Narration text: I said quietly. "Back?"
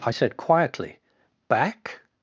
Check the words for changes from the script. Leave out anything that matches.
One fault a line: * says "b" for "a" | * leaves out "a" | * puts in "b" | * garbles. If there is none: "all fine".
all fine